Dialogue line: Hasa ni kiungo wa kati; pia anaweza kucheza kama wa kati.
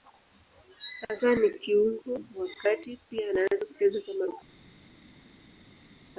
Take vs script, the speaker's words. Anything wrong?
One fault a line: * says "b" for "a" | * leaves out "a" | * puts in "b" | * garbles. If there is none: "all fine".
all fine